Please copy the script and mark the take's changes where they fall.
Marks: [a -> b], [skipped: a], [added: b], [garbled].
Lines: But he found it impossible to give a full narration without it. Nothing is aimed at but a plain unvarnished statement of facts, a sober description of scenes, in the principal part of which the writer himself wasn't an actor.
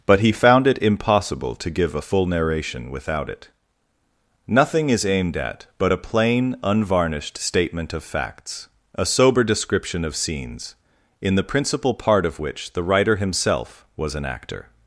But he found it impossible to give a full narration without it. Nothing is aimed at but a plain unvarnished statement of facts, a sober description of scenes, in the principal part of which the writer himself [wasn't -> was] an actor.